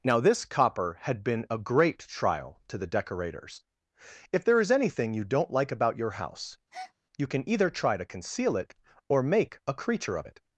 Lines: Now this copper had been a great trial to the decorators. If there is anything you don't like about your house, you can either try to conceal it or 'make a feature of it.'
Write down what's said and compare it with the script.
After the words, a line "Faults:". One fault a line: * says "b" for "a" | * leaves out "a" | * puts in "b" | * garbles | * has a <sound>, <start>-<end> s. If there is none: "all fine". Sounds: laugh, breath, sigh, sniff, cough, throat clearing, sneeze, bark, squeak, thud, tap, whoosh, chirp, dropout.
Now this copper had been a great trial to the decorators. If there is anything you don't like about your house, you can either try to conceal it or 'make a creature of it.'
Faults:
* has a breath, 6.7-6.9 s
* says "creature" for "feature"